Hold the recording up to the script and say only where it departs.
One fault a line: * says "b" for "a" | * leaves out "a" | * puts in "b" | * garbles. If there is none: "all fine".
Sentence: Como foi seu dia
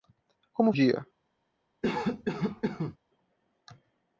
* leaves out "foi seu"